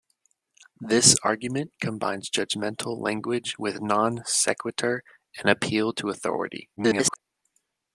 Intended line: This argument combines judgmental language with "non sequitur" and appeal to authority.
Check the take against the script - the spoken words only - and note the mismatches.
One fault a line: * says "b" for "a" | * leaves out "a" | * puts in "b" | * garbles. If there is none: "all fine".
* garbles